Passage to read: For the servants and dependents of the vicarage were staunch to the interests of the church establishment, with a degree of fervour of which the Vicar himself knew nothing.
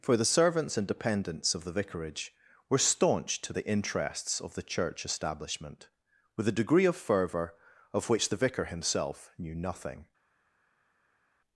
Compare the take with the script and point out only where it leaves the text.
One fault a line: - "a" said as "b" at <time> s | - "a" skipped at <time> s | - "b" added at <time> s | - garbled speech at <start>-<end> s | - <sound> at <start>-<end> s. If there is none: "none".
none